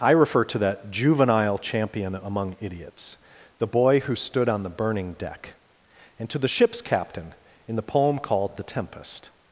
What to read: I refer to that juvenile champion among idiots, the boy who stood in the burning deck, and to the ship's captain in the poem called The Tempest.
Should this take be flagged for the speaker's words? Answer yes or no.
yes